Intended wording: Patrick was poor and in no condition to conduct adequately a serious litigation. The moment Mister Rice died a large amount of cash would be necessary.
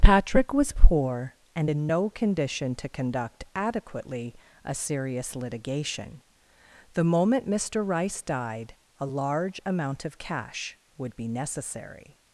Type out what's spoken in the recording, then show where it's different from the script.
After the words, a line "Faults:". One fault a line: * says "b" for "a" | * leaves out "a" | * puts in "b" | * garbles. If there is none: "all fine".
Patrick was poor and in no condition to conduct adequately a serious litigation. The moment Mister Rice died a large amount of cash would be necessary.
Faults:
all fine